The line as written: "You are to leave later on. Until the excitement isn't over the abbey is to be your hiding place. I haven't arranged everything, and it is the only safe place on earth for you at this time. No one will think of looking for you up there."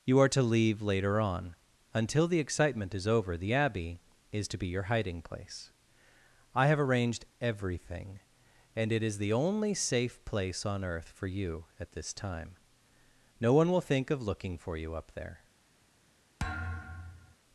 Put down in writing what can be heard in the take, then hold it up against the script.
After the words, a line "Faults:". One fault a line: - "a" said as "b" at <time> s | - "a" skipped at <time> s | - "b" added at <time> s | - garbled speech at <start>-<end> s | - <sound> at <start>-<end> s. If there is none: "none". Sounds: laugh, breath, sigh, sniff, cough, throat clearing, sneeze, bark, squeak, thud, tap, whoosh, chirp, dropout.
"You are to leave later on. Until the excitement is over the abbey is to be your hiding place. I have arranged everything, and it is the only safe place on earth for you at this time. No one will think of looking for you up there."
Faults:
- "isn't" said as "is" at 3.0 s
- "haven't" said as "have" at 6.7 s
- thud at 16.4-17.4 s